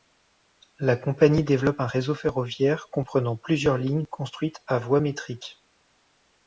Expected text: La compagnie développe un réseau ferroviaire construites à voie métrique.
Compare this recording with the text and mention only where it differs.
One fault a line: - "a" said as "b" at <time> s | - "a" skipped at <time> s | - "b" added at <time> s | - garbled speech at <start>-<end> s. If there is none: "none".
- "comprenant plusieurs lignes" added at 2.9 s